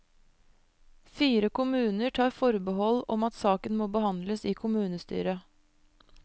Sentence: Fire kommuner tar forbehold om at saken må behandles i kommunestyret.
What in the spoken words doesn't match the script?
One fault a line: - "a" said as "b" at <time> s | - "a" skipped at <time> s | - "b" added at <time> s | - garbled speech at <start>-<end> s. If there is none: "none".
none